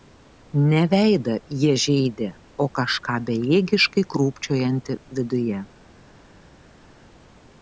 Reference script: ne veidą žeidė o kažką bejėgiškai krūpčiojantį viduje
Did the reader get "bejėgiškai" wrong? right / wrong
right